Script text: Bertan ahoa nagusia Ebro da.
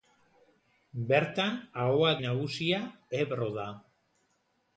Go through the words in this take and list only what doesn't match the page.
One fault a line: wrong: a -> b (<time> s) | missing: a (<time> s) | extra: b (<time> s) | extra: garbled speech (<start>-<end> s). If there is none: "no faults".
no faults